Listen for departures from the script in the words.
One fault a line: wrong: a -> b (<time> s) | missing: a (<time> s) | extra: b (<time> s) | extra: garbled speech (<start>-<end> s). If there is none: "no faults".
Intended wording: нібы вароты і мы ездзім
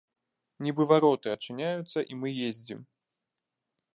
extra: адчыняюцца (1.3 s)